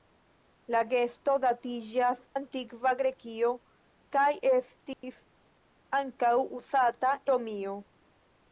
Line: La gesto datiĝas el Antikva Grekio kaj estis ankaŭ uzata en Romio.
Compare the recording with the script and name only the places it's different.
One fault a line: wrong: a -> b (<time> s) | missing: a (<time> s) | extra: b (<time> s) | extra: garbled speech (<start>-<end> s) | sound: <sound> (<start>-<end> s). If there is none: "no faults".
missing: el (2.2 s)
sound: dropout (4.9-5.0 s)
missing: en (7.1 s)